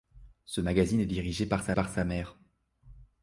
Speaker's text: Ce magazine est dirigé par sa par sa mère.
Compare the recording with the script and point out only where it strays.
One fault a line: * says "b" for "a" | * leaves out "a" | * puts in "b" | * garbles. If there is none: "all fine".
all fine